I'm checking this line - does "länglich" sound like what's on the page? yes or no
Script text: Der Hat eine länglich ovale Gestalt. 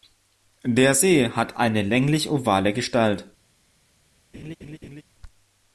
yes